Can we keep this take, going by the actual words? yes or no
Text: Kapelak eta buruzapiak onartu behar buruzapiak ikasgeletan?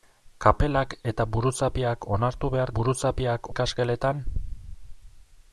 yes